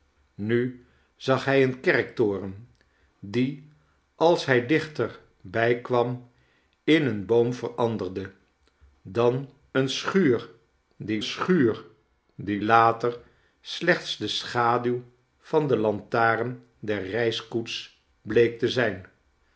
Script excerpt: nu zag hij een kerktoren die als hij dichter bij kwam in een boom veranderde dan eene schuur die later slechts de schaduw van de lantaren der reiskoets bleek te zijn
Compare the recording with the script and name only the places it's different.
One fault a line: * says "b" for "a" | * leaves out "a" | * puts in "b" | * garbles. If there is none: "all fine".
* puts in "schuur die"